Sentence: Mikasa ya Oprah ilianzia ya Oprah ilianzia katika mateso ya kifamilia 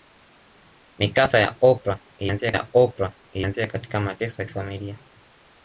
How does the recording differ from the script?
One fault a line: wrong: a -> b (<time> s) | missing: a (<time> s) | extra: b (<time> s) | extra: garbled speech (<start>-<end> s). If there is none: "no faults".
no faults